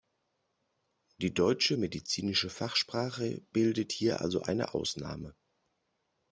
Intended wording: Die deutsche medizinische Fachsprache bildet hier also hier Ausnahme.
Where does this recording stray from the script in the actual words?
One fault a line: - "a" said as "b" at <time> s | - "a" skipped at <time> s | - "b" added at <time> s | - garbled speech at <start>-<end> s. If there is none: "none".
- "hier" said as "eine" at 4.4 s